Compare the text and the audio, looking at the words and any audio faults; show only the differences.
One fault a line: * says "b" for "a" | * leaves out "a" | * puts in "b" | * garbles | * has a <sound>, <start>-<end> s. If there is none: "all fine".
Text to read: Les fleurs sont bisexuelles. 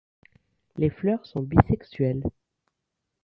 all fine